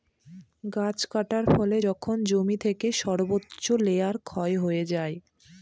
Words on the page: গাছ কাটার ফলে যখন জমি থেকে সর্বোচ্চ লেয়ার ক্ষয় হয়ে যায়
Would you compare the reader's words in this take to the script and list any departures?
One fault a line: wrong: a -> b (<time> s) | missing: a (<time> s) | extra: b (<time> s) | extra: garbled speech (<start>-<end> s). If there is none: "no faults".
no faults